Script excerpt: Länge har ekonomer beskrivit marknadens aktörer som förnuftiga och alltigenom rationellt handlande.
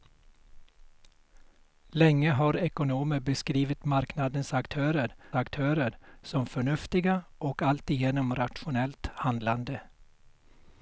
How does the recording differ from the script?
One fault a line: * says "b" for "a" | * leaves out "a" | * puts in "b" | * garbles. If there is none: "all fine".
* puts in "aktörer"